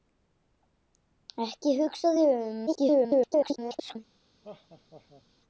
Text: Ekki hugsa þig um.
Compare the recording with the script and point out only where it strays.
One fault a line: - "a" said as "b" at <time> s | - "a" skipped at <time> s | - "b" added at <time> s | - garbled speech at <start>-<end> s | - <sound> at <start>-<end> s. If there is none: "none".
- garbled speech at 2.7-4.0 s
- laugh at 4.4-5.2 s